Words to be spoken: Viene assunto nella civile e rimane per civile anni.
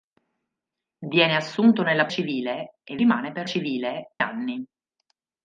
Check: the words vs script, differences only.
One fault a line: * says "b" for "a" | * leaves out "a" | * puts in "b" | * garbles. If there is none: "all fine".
all fine